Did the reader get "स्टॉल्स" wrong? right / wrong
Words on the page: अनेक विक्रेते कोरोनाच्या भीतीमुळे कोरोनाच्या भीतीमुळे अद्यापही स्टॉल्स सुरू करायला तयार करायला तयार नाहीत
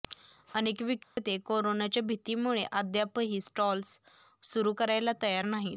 right